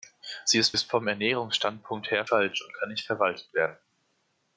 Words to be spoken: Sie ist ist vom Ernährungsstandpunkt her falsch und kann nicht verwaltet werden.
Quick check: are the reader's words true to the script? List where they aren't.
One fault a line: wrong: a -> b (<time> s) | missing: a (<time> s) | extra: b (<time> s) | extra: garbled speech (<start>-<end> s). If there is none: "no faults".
no faults